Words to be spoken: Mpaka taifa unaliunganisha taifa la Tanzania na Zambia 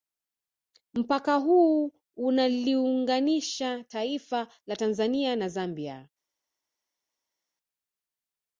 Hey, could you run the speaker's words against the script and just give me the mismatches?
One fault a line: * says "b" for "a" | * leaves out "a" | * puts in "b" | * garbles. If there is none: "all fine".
* says "huu" for "taifa"